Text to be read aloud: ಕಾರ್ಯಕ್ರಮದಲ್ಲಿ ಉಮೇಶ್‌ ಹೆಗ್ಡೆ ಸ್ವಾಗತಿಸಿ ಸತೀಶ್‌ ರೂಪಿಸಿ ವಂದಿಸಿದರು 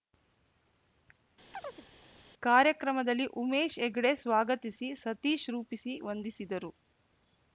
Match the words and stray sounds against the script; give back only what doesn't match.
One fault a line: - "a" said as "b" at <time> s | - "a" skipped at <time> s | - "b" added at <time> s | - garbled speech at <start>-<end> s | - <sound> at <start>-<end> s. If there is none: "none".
- chirp at 1.5-1.9 s